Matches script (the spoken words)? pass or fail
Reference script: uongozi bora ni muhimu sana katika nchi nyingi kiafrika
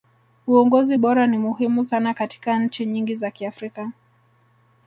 fail